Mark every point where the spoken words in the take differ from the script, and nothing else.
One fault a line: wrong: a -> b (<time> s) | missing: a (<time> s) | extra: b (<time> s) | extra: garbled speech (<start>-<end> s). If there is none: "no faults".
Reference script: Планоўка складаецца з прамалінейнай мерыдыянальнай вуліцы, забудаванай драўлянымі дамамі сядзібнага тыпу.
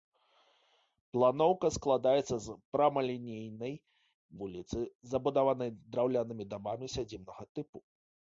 missing: мерыдыянальнай (3.7 s)